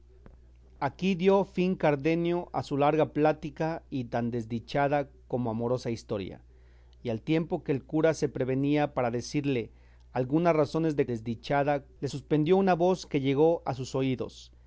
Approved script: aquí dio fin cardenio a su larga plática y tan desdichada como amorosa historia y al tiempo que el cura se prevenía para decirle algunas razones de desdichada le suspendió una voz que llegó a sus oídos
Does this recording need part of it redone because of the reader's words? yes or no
no